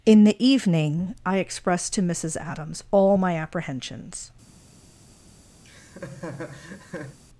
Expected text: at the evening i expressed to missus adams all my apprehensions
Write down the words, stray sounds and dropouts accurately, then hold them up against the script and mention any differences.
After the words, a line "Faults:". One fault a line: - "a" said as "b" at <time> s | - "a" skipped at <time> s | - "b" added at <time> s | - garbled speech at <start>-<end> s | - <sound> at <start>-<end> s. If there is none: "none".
in the evening i expressed to missus adams all my apprehensions
Faults:
- "at" said as "in" at 0.0 s
- laugh at 5.6-7.2 s